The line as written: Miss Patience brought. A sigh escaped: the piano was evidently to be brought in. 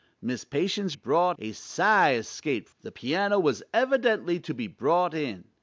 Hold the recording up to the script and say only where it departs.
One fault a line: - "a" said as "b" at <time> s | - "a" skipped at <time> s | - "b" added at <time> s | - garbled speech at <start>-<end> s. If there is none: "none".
none